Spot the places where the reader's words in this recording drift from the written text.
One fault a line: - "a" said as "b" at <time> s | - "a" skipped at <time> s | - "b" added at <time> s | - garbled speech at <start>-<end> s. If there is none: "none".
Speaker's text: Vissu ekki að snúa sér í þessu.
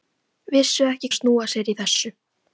none